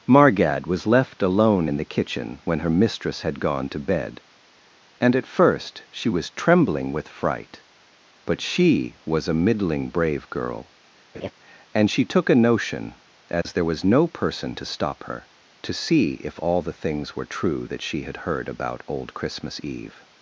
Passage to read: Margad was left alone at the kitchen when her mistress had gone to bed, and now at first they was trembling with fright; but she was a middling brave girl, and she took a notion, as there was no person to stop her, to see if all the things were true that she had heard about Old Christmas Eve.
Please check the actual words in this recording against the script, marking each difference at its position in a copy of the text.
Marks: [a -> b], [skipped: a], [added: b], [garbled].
Margad was left alone [at -> in] the kitchen when her mistress had gone to bed, and [skipped: now] at first [they -> she] was trembling with fright; but she was a middling brave girl, and she took a notion, as there was no person to stop her, to see if all the things were true that she had heard about Old Christmas Eve.